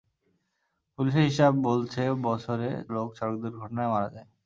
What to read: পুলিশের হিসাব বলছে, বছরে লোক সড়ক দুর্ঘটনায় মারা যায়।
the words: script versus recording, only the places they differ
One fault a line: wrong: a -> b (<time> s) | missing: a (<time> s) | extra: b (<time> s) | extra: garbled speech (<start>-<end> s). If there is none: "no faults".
no faults